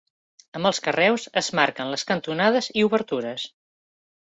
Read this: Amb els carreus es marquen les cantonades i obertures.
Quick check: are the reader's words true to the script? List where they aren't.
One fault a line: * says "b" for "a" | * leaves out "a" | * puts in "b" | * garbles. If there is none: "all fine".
all fine